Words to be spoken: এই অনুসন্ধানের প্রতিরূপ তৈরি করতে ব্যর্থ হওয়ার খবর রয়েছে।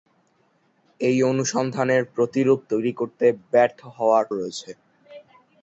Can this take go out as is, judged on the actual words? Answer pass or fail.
fail